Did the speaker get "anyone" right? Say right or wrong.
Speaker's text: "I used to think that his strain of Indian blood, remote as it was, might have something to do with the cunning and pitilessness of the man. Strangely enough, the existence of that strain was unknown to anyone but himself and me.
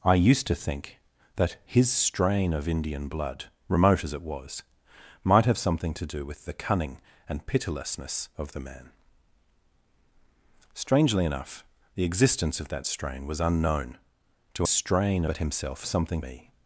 wrong